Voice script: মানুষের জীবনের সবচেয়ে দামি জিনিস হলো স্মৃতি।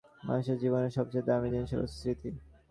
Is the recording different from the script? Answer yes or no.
no